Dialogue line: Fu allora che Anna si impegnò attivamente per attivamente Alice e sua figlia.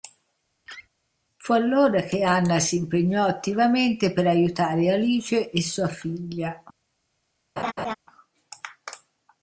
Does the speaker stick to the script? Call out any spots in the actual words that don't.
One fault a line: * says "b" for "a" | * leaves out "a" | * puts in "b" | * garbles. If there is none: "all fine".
* says "aiutare" for "attivamente"